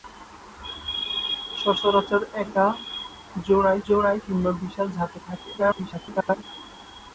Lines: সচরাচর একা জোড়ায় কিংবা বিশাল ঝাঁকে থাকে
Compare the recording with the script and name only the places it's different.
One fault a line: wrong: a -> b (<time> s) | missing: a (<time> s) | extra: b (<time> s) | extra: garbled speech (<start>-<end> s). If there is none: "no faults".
extra: জোড়ায় (3.9 s)
extra: garbled speech (5.6-6.4 s)